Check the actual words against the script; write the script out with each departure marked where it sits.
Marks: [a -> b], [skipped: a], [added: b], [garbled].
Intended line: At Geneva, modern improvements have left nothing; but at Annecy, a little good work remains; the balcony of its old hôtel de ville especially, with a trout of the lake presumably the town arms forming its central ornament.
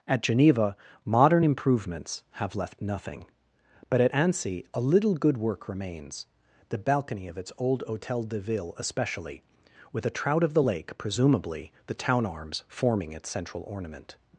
At Geneva, modern improvements have left nothing; but at Annecy, a little good work remains; the balcony of its old hôtel de ville especially, with a trout of the lake presumably the town arms forming its central ornament.